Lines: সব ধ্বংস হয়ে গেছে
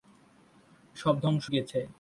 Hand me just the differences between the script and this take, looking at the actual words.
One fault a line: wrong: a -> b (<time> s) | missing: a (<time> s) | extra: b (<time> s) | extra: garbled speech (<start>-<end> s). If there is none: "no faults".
missing: হয়ে (1.5 s)